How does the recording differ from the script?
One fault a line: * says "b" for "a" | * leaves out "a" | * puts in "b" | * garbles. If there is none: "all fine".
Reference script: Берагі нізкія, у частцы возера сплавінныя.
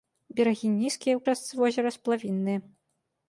all fine